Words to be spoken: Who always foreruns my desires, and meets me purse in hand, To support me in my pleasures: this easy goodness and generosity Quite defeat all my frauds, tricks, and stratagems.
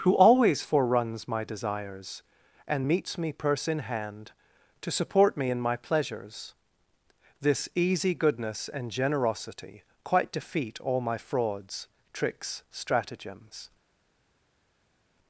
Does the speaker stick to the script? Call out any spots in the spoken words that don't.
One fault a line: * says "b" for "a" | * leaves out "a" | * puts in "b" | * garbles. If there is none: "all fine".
* leaves out "and"